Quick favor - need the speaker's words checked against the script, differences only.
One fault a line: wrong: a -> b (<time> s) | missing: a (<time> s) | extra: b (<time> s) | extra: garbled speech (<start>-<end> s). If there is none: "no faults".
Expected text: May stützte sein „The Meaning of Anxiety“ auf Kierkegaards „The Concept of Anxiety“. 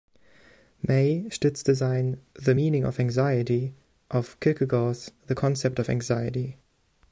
no faults